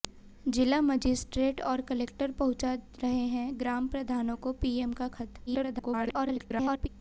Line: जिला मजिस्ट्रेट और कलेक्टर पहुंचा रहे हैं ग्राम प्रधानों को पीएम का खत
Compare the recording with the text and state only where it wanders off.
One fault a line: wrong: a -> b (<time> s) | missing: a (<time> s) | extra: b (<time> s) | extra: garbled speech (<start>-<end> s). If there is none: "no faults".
extra: garbled speech (5.5-6.9 s)